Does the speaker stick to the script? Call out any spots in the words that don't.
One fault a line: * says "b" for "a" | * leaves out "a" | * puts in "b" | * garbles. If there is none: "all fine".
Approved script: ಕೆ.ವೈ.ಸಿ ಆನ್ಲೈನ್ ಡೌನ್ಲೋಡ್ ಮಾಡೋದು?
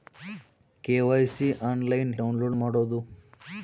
all fine